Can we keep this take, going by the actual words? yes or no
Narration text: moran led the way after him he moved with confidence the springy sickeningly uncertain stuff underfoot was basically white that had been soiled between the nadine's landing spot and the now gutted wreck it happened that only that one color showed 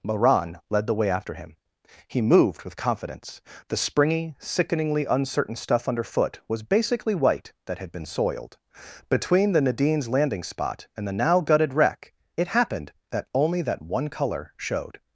yes